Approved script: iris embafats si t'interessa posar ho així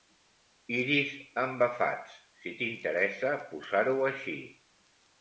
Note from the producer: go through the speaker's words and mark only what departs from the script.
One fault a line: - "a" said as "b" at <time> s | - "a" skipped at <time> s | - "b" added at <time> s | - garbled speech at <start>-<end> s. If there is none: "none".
none